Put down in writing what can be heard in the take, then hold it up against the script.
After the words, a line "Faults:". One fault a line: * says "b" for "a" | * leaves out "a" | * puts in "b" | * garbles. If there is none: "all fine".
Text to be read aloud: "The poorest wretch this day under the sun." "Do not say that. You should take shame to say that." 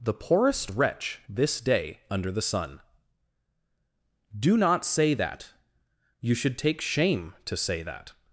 "The poorest wretch this day under the sun." "Do not say that. You should take shame to say that."
Faults:
all fine